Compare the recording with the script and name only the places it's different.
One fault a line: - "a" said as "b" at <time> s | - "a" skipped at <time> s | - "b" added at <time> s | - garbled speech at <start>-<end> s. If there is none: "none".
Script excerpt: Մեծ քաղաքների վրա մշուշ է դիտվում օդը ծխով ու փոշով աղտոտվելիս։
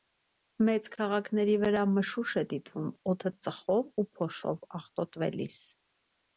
none